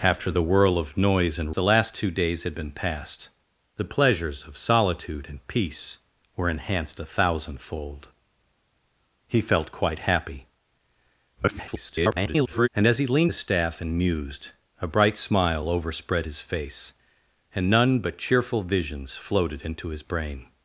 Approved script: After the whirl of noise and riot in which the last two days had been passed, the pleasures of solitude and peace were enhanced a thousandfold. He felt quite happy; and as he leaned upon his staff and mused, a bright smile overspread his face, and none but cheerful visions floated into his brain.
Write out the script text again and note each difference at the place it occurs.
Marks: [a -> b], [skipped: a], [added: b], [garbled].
After the whirl of noise and [skipped: riot in which] the last two days had been passed, the pleasures of solitude and peace were enhanced a thousandfold. He felt quite happy; [garbled] and as he leaned [skipped: upon] his staff and mused, a bright smile overspread his face, and none but cheerful visions floated into his brain.